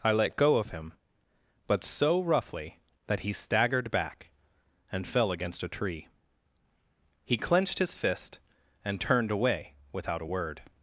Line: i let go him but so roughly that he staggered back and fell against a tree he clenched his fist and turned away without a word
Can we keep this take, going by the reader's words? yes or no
no